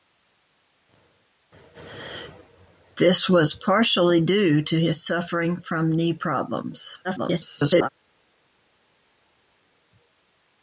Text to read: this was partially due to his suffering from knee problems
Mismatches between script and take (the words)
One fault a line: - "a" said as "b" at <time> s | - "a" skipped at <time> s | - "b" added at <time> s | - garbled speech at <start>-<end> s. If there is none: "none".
- garbled speech at 7.0-7.9 s